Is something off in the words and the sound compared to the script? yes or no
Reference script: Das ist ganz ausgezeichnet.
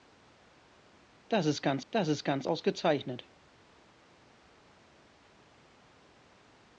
yes